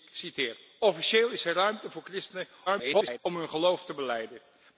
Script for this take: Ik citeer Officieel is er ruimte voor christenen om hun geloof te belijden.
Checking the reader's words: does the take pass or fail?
fail